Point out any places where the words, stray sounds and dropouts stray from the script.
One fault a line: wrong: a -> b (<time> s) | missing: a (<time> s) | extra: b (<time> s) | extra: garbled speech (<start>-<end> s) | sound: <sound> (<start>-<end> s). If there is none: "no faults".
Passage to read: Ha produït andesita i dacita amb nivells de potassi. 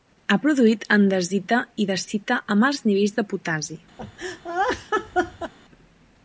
extra: alts (2.7 s)
sound: laugh (4.0-5.5 s)